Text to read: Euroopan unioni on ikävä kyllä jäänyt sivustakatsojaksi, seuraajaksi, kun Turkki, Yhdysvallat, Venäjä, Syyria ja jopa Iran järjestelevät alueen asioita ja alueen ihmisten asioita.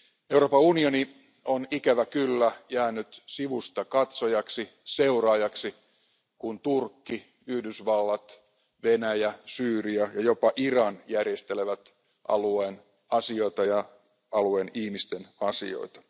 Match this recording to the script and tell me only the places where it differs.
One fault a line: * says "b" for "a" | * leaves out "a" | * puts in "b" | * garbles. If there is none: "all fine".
all fine